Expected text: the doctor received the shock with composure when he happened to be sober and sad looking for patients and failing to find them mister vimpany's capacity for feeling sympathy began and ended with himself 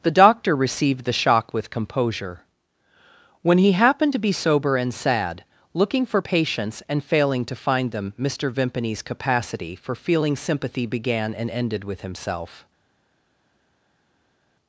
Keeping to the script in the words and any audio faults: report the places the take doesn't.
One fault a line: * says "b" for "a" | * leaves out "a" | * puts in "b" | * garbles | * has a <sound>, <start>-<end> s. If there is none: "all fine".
all fine